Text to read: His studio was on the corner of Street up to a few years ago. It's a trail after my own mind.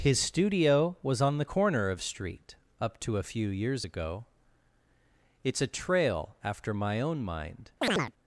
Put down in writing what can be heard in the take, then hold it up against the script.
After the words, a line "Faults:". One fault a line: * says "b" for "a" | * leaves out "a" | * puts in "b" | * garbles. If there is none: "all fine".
His studio was on the corner of Street up to a few years ago. It's a trail after my own mind.
Faults:
all fine